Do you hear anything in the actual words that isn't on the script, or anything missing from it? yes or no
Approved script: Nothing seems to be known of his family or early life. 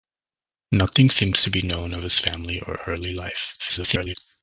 yes